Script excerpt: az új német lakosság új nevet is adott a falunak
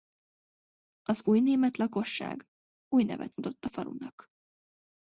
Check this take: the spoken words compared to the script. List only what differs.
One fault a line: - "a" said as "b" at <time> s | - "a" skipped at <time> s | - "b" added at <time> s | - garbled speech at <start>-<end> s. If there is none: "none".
- "is" skipped at 3.4 s